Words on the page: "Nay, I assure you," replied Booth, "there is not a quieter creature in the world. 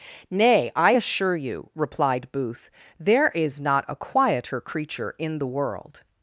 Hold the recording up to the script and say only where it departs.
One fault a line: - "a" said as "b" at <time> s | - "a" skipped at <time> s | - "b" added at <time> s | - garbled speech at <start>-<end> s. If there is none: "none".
none